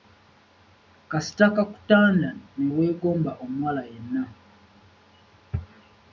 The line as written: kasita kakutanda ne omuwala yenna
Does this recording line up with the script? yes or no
no